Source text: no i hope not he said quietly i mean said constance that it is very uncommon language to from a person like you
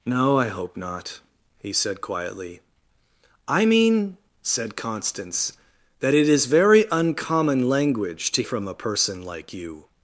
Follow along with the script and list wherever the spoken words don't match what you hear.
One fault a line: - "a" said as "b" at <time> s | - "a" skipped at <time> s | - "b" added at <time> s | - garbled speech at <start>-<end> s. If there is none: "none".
none